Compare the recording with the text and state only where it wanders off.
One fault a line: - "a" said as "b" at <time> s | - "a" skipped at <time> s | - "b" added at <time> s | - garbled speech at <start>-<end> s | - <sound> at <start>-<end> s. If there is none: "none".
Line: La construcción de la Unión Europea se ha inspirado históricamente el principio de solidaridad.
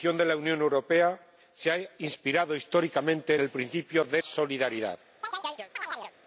- chirp at 5.2-6.1 s